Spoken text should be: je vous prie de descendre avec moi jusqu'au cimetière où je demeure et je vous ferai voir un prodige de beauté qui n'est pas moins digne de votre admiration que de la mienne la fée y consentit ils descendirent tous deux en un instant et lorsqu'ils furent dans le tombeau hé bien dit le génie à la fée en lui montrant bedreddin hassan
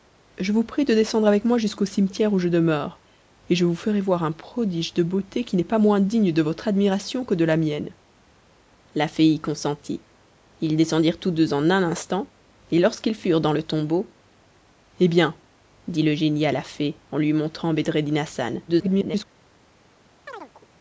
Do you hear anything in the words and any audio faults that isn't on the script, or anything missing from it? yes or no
yes